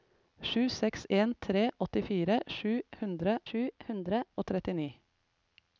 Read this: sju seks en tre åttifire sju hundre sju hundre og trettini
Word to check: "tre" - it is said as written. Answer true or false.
true